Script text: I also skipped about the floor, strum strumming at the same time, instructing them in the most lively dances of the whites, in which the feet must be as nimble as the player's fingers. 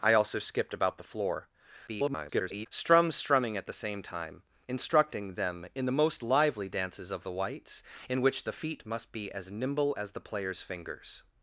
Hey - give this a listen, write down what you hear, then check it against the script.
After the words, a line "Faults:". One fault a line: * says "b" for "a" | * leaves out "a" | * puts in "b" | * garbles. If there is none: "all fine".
I also skipped about the floor, [garbled] strum strumming at the same time, instructing them in the most lively dances of the whites, in which the feet must be as nimble as the player's fingers.
Faults:
* garbles